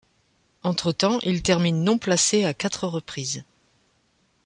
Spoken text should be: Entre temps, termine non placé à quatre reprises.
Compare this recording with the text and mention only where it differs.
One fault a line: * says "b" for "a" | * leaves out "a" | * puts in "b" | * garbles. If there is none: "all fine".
* puts in "il"